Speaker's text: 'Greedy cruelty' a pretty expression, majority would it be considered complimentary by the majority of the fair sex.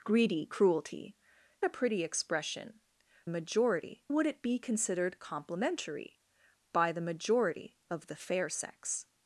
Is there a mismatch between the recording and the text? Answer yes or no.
no